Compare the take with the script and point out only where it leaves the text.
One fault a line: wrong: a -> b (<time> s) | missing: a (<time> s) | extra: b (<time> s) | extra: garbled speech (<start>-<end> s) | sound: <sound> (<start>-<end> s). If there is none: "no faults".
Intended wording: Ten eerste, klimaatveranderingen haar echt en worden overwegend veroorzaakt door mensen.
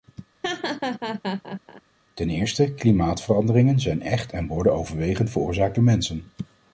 sound: laugh (0.4-1.8 s)
wrong: haar -> zijn (3.8 s)